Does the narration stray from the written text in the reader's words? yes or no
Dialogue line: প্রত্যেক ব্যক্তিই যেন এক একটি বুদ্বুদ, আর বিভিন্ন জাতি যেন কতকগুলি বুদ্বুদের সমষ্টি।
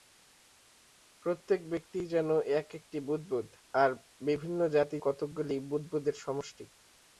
yes